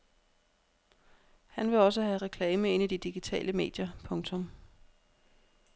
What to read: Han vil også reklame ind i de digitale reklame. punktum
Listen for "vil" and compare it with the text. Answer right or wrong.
right